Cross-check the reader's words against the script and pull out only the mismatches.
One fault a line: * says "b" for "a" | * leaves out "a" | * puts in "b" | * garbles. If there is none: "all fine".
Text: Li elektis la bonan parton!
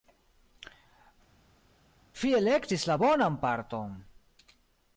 * says "Vi" for "Li"